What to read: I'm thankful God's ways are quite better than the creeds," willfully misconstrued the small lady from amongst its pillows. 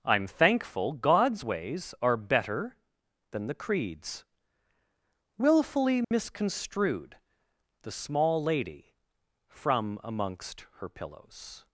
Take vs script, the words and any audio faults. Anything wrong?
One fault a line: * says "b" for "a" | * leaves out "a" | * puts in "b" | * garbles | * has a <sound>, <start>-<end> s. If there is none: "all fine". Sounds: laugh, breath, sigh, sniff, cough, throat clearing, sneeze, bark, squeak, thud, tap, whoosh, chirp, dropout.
* leaves out "quite"
* has a dropout, 6.0-6.1 s
* says "her" for "its"